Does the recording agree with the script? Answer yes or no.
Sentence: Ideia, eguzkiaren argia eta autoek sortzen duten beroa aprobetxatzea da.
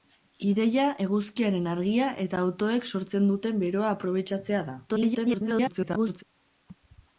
no